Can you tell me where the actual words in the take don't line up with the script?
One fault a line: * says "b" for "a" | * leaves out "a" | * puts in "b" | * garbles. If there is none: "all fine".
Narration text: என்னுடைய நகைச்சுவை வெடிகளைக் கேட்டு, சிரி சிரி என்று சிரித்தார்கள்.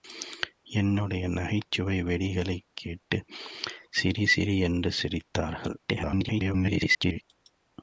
* garbles